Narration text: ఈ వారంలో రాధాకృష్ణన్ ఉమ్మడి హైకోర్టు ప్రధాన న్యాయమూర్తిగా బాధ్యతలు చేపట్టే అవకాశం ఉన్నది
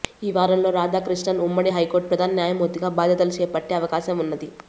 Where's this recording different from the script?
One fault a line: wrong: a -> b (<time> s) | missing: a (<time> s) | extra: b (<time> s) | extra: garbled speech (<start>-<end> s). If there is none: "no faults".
no faults